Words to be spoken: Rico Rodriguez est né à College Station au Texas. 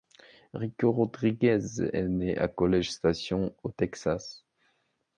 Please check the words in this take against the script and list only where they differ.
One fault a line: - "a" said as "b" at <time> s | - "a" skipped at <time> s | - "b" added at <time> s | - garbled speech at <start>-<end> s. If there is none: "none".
none